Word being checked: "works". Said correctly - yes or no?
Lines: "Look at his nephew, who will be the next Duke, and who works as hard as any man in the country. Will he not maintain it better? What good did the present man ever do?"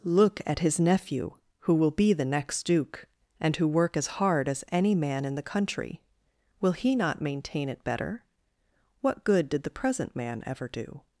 no